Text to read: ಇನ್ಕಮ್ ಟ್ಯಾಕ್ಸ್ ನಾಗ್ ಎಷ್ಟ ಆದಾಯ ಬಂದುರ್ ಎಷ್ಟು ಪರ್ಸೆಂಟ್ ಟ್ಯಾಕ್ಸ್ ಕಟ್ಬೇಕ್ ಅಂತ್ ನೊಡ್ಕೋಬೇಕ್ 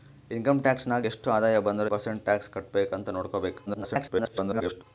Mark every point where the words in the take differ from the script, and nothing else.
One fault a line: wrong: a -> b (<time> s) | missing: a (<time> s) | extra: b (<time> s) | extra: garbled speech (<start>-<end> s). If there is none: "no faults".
missing: ಎಷ್ಟು (1.9 s)
extra: garbled speech (3.7-4.8 s)